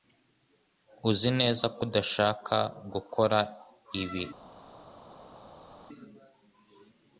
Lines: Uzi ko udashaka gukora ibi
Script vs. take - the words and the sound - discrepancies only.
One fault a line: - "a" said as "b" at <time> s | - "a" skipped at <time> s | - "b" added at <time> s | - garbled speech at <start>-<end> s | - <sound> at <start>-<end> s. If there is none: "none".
- "neza" added at 1.4 s